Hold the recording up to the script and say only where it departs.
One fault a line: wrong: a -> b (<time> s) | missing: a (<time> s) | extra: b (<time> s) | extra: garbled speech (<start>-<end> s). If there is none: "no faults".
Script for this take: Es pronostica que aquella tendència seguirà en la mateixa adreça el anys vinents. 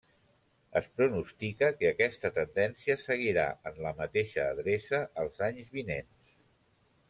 wrong: aquella -> aquesta (1.9 s)
wrong: el -> els (5.2 s)